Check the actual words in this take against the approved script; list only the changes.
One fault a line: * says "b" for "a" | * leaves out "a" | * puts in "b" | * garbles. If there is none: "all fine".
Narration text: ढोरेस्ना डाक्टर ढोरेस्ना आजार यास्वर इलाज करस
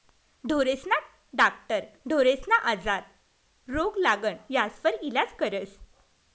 * puts in "रोग लागण"